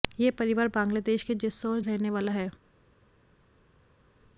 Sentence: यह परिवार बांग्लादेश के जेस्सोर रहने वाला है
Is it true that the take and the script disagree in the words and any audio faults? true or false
false